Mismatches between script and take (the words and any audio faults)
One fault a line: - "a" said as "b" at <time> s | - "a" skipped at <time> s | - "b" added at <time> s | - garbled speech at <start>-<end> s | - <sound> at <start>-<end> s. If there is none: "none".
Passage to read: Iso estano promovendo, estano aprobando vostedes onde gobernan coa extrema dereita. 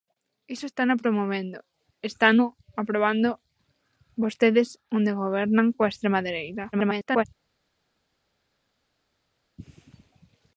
- garbled speech at 6.7-7.2 s